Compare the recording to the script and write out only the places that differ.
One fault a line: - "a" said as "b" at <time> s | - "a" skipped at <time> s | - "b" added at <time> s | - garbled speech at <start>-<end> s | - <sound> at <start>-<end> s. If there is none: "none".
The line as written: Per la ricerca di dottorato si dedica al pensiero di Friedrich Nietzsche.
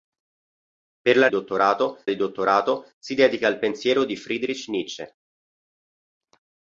- "ricerca" said as "dottorato" at 1.3 s